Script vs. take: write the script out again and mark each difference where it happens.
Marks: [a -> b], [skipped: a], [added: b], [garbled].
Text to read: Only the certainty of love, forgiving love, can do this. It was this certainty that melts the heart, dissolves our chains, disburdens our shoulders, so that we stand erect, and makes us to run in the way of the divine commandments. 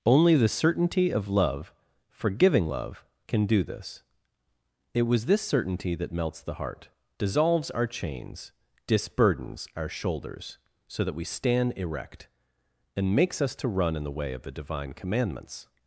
Only the certainty of love, forgiving love, can do this. It was this certainty that melts the heart, dissolves our chains, disburdens our shoulders, so that we stand erect, and makes us to run in the way of the divine commandments.